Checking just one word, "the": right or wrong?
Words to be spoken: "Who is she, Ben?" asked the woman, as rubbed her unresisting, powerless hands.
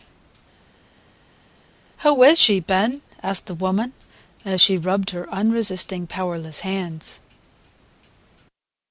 right